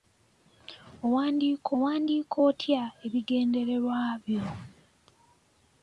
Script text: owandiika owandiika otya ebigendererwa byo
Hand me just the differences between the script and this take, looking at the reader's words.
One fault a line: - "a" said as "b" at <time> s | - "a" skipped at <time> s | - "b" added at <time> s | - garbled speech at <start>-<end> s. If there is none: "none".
none